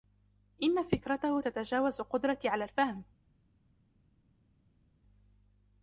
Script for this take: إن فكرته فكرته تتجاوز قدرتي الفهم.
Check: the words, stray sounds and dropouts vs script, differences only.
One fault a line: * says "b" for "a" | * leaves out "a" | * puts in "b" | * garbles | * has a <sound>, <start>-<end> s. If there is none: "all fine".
* leaves out "فكرته"
* puts in "على"